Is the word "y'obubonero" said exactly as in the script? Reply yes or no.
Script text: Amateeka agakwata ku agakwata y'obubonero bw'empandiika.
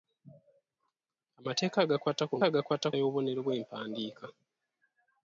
yes